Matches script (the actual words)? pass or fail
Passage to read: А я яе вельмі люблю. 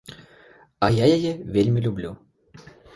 pass